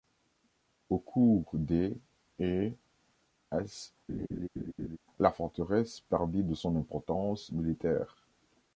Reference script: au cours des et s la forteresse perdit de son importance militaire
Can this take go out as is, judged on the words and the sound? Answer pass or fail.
fail